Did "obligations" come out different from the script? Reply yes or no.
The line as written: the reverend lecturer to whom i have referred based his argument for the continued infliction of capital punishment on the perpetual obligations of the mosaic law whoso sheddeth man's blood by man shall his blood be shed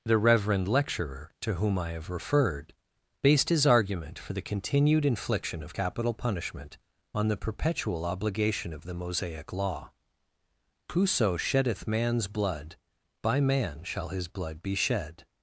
yes